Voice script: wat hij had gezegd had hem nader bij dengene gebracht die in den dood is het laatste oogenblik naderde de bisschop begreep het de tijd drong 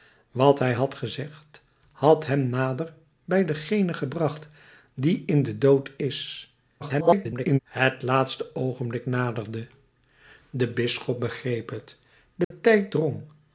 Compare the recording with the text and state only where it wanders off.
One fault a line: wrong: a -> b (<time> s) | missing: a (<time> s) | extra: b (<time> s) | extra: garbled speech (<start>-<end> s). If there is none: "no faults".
extra: garbled speech (6.8-7.6 s)